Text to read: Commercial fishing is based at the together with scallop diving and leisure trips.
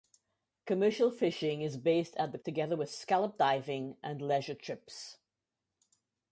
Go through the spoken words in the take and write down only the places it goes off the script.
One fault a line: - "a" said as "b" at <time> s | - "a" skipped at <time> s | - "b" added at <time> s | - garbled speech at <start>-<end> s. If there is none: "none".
none